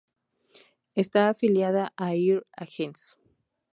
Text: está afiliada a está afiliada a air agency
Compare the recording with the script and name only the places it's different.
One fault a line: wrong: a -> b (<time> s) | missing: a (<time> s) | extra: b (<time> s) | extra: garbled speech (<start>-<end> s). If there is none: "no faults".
missing: está afiliada a (2.1 s)